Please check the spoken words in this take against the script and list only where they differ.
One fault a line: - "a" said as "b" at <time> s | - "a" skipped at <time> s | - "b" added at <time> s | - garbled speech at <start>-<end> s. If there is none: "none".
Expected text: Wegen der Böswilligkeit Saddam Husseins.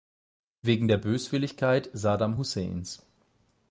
none